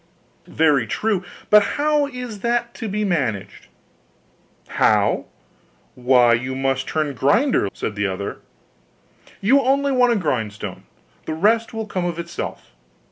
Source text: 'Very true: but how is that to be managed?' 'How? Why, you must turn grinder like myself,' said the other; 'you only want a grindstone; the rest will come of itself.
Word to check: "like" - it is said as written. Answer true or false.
false